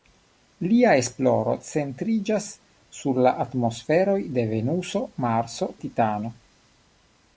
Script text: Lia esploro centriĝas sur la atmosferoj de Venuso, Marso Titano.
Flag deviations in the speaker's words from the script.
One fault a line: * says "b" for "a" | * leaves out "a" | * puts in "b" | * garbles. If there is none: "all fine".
all fine